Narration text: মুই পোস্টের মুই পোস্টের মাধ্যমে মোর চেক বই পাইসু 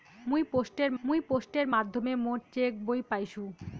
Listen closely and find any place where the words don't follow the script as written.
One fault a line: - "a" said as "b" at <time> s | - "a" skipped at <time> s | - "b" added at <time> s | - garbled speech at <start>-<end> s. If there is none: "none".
none